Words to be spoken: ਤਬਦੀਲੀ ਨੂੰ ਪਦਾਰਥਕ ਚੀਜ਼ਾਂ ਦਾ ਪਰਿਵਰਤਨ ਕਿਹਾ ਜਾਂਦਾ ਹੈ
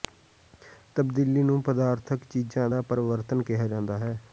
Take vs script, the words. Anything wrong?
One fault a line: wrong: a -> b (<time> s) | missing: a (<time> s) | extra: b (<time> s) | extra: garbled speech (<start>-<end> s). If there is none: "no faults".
no faults